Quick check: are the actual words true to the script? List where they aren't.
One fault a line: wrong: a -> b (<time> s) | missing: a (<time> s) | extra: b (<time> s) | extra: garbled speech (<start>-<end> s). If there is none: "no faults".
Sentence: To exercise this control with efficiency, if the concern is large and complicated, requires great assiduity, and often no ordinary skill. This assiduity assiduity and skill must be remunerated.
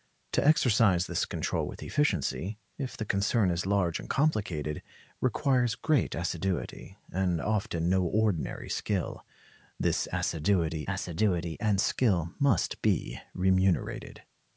no faults